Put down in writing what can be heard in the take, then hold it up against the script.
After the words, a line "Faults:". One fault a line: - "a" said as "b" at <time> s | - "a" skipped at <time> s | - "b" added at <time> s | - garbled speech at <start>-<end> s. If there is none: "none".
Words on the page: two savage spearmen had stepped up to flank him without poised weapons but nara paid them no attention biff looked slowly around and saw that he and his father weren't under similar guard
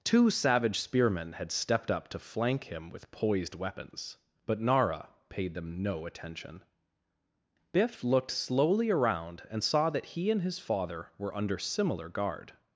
two savage spearmen had stepped up to flank him with poised weapons but nara paid them no attention biff looked slowly around and saw that he and his father were under similar guard
Faults:
- "without" said as "with" at 2.9 s
- "weren't" said as "were" at 11.2 s